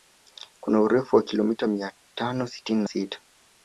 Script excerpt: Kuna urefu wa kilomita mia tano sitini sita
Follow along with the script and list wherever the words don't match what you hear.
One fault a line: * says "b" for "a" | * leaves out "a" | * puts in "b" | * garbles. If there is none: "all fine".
all fine